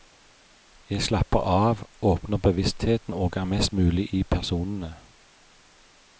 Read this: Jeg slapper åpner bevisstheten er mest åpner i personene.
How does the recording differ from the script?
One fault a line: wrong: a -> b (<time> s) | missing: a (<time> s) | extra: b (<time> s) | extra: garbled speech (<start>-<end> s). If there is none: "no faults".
extra: av (1.4 s)
extra: og (3.1 s)
wrong: åpner -> mulig (3.7 s)